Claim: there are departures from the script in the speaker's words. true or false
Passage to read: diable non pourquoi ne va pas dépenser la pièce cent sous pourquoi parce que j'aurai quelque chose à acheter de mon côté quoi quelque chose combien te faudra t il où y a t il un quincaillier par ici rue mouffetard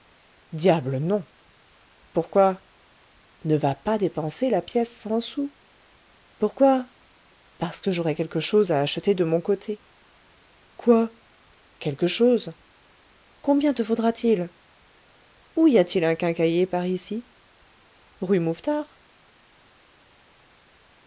false